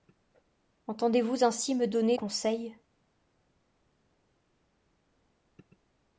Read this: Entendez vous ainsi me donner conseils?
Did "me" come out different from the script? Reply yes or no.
no